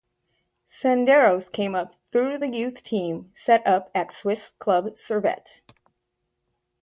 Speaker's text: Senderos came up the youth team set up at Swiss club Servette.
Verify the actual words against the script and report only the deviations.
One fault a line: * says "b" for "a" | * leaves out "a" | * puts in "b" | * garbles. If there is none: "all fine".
* puts in "through"